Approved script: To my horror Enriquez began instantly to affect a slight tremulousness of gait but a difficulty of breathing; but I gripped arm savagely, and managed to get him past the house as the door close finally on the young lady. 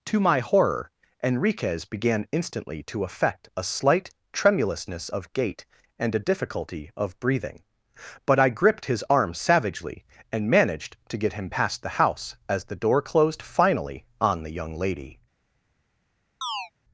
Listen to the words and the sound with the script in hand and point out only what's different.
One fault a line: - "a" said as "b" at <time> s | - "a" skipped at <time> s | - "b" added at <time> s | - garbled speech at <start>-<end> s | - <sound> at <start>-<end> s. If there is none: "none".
- "but" said as "and" at 6.0 s
- "his" added at 8.9 s
- "close" said as "closed" at 13.0 s
- chirp at 16.4-16.7 s